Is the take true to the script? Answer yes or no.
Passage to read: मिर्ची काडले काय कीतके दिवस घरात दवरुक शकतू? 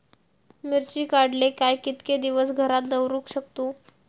yes